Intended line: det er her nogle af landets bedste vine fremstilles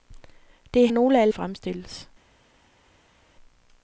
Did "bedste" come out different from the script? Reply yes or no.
yes